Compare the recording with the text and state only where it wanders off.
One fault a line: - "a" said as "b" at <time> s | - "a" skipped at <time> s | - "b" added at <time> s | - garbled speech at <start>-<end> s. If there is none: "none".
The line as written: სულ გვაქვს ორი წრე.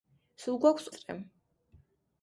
- "ორი" skipped at 0.9 s